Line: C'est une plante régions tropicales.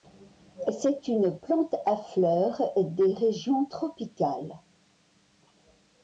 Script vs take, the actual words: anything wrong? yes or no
yes